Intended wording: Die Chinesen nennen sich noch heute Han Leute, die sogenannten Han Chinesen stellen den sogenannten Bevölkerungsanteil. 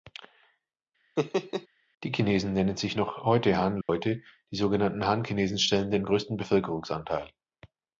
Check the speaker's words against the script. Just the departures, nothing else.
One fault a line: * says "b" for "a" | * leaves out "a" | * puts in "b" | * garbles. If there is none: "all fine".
* says "größten" for "sogenannten"